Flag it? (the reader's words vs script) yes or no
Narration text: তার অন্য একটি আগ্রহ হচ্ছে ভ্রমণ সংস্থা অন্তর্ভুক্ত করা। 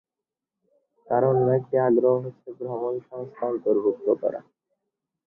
no